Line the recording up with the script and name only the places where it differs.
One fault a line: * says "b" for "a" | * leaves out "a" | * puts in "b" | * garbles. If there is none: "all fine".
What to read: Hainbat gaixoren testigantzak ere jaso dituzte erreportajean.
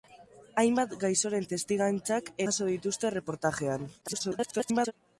* leaves out "ere"
* garbles